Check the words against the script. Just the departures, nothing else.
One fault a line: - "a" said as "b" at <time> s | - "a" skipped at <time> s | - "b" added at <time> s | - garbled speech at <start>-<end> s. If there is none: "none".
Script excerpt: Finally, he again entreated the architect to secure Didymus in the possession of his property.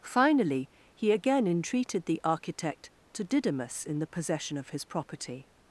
- "secure" skipped at 3.2 s